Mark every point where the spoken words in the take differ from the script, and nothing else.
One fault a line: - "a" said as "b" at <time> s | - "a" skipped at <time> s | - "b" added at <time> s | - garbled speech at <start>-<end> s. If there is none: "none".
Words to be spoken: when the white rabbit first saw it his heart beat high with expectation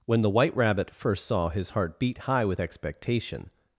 - "it" skipped at 1.5 s